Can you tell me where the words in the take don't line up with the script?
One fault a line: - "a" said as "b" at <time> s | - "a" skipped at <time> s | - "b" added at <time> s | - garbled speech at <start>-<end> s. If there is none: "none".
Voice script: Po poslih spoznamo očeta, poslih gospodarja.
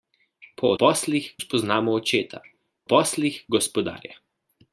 none